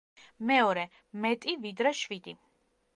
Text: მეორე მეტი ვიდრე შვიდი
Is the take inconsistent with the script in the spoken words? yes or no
no